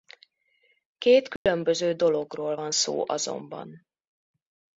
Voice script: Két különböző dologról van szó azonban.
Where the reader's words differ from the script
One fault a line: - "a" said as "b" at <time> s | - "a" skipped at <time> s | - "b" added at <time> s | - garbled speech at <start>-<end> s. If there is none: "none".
none